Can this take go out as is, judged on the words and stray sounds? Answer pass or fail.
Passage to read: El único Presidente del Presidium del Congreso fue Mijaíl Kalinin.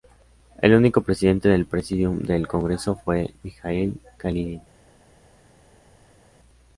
pass